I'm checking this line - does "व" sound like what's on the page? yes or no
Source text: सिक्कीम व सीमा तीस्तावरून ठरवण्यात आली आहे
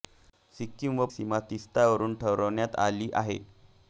yes